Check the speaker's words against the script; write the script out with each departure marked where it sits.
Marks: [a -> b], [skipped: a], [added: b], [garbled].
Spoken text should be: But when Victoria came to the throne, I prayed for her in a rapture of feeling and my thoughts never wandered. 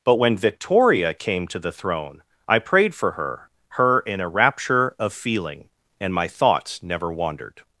But when Victoria came to the throne, I prayed for her [added: her] in a rapture of feeling and my thoughts never wandered.